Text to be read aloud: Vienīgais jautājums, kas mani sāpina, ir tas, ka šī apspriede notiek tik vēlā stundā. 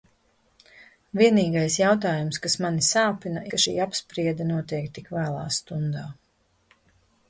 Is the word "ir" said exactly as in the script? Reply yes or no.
no